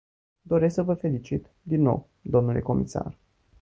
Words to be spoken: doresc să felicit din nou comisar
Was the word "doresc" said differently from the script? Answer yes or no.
no